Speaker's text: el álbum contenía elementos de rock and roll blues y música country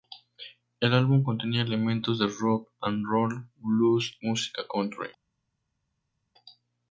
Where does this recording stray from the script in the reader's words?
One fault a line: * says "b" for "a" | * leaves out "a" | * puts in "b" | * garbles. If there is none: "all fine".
* leaves out "y"